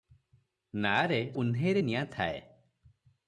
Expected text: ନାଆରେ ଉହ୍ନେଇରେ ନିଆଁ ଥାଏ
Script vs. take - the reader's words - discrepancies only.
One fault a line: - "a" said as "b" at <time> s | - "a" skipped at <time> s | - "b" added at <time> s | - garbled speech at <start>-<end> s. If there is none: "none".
none